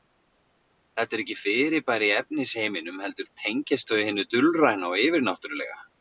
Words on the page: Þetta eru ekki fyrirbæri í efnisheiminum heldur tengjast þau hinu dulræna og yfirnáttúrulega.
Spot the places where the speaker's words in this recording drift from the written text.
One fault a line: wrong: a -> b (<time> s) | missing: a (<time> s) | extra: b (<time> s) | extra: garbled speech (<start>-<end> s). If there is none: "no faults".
no faults